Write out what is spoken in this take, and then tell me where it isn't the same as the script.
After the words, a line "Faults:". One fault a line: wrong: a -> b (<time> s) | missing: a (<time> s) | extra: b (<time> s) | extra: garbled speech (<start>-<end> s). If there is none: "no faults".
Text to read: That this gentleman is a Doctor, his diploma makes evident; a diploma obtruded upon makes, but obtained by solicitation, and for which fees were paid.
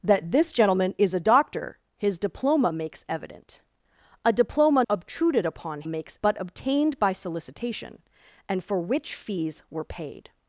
That this gentleman is a Doctor, his diploma makes evident; a diploma obtruded upon makes, but obtained by solicitation, and for which fees were paid.
Faults:
no faults